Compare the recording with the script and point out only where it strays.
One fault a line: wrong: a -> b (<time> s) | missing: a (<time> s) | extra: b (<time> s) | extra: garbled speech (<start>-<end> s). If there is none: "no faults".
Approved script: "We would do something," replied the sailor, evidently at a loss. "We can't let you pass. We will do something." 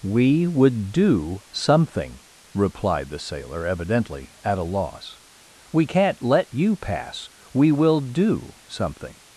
no faults